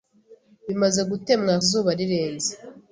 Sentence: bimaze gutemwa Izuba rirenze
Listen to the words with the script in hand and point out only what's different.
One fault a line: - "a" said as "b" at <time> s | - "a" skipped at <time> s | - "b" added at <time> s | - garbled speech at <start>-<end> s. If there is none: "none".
none